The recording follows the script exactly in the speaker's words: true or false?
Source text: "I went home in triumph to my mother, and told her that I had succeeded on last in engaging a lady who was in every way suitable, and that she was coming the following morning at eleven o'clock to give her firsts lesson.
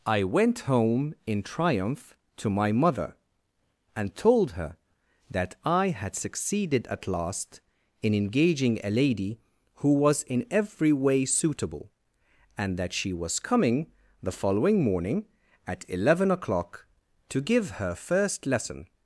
false